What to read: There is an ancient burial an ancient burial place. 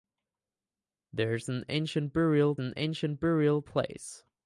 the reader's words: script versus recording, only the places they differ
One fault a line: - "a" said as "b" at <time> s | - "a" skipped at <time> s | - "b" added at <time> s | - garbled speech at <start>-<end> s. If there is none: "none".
none